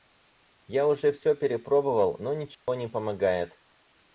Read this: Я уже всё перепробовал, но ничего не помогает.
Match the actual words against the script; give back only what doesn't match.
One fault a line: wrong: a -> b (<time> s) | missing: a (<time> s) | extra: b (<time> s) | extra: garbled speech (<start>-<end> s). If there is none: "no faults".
no faults